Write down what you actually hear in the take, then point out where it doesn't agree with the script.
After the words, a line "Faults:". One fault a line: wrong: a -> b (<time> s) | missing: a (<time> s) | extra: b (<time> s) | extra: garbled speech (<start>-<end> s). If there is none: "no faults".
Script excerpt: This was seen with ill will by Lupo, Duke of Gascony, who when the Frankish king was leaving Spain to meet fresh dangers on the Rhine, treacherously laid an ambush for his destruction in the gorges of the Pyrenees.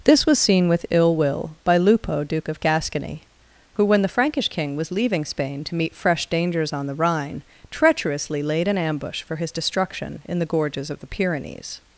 This was seen with ill will by Lupo, Duke of Gascony, who when the Frankish king was leaving Spain to meet fresh dangers on the Rhine, treacherously laid an ambush for his destruction in the gorges of the Pyrenees.
Faults:
no faults